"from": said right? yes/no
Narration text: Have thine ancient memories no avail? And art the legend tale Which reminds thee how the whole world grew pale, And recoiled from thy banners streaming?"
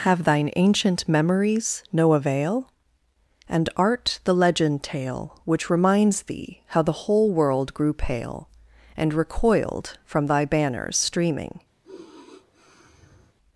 yes